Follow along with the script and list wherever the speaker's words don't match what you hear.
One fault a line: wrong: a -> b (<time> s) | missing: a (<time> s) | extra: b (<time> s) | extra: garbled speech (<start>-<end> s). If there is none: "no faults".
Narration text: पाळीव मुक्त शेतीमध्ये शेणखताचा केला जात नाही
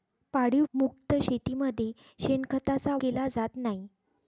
no faults